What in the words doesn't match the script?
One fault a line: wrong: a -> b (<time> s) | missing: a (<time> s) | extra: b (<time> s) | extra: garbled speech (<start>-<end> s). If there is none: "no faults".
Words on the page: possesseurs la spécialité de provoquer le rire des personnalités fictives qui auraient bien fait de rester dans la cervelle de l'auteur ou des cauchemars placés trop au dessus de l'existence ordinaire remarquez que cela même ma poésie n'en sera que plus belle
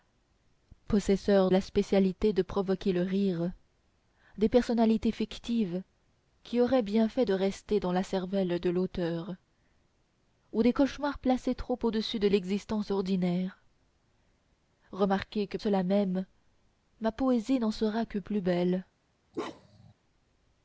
no faults